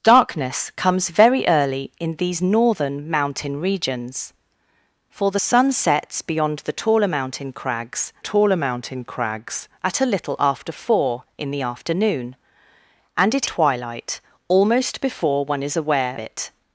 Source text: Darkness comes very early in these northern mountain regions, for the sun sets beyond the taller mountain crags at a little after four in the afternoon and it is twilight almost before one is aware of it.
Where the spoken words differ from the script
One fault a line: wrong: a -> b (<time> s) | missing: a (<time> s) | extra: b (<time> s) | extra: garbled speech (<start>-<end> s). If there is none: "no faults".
extra: taller mountain crags (8.2 s)
missing: is (13.5 s)
missing: of (16.2 s)